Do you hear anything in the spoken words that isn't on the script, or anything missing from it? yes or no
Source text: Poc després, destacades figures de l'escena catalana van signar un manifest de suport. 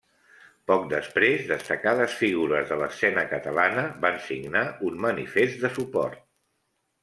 no